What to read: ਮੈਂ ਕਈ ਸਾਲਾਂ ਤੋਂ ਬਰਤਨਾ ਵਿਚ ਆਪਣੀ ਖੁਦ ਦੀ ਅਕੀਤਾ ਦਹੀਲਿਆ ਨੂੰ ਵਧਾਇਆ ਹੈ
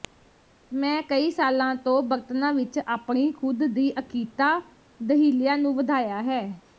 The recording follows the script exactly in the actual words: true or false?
true